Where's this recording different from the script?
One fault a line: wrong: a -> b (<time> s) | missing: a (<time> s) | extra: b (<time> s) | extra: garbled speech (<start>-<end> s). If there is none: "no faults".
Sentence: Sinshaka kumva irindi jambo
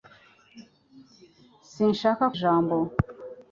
missing: kumva irindi (2.2 s)